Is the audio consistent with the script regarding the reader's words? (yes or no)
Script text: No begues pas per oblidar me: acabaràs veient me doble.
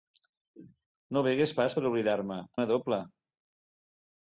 no